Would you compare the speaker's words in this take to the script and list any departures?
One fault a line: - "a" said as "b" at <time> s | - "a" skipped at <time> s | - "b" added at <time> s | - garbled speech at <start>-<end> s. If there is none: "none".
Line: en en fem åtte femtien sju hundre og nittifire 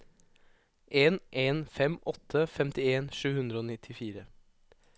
none